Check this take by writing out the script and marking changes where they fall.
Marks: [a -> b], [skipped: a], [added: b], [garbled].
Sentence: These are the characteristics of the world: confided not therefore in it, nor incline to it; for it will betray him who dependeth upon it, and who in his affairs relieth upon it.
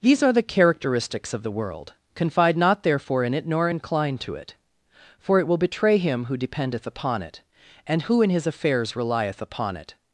These are the characteristics of the world: [confided -> confide] not therefore in it, nor incline to it; for it will betray him who dependeth upon it, and who in his affairs relieth upon it.